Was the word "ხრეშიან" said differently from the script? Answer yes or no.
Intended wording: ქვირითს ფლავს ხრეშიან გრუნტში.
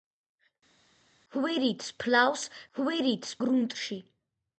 yes